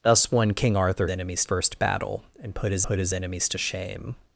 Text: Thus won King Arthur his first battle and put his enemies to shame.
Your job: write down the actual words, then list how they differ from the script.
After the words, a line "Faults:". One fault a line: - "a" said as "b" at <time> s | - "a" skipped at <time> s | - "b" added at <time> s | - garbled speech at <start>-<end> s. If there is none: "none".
Thus won King Arthur enemies first battle and put his put his enemies to shame.
Faults:
- "his" said as "enemies" at 1.1 s
- "put his" added at 2.8 s